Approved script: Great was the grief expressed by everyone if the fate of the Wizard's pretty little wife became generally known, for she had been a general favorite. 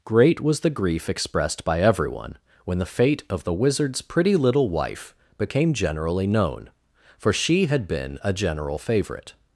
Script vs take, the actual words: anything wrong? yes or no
yes